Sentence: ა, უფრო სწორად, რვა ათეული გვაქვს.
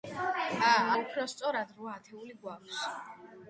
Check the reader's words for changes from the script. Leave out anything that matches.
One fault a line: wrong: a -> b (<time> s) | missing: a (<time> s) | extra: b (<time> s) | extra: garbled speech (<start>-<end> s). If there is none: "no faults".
no faults